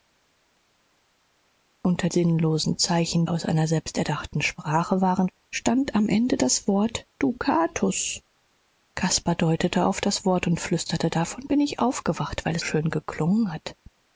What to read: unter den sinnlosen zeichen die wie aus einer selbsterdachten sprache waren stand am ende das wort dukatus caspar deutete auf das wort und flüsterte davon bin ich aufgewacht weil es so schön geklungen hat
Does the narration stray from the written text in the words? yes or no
yes